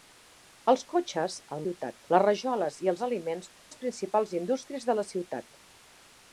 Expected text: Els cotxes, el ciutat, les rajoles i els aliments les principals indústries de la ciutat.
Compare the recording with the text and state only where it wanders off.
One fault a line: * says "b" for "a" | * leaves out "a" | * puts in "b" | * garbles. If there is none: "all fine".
all fine